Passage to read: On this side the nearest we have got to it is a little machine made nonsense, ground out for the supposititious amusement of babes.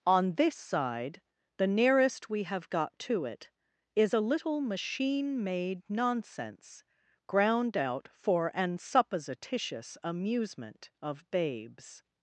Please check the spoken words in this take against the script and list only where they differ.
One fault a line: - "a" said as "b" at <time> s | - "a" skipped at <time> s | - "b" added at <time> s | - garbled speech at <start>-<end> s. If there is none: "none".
- "the" said as "an" at 8.6 s